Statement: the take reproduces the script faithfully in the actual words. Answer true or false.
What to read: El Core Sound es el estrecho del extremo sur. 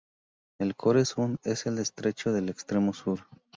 true